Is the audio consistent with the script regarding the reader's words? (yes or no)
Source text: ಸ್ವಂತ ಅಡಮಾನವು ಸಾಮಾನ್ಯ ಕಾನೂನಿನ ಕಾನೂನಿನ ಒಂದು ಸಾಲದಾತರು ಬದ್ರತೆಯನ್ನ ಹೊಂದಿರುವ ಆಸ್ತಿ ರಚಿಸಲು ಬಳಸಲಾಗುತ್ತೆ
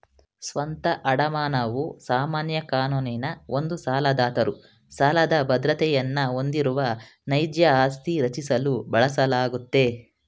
no